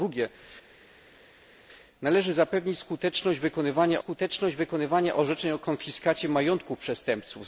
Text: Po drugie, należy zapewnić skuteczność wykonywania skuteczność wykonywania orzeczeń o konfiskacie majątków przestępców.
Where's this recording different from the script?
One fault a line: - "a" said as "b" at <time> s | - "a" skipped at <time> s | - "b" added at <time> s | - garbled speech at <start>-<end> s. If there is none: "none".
none